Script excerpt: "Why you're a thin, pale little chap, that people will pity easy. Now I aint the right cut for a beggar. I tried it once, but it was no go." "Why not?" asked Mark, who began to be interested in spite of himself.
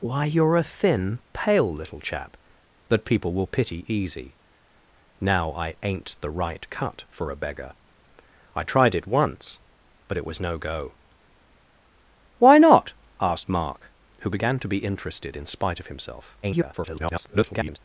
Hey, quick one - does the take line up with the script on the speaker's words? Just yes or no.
no